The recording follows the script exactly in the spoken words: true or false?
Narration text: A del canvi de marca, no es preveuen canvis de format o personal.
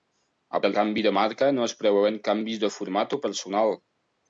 true